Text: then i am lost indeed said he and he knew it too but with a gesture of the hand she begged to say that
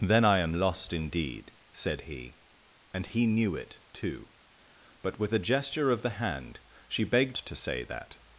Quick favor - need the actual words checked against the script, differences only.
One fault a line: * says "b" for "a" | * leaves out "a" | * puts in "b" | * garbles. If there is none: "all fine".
all fine